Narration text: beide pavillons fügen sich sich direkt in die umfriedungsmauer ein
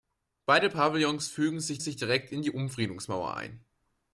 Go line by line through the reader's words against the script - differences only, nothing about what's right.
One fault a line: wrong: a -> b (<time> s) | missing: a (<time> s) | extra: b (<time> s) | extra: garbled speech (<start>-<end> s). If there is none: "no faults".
no faults